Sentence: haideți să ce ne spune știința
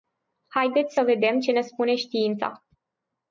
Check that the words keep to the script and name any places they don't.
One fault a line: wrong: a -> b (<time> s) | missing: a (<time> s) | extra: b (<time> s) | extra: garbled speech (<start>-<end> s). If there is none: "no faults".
extra: vedem (1.0 s)